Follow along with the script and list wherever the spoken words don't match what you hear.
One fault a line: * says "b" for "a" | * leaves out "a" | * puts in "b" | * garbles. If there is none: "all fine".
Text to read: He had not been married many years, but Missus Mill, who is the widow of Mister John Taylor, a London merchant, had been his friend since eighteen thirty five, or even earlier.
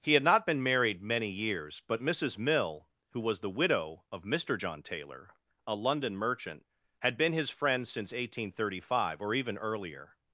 * says "was" for "is"